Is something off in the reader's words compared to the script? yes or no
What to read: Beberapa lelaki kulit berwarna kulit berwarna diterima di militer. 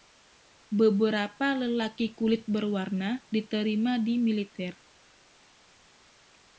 yes